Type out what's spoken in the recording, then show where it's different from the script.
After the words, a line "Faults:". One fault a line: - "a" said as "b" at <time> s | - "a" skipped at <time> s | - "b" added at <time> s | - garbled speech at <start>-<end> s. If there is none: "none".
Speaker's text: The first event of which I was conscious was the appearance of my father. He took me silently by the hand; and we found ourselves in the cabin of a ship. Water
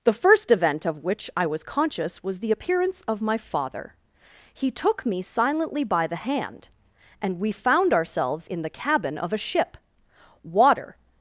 The first event of which I was conscious was the appearance of my father. He took me silently by the hand; and we found ourselves in the cabin of a ship. Water
Faults:
none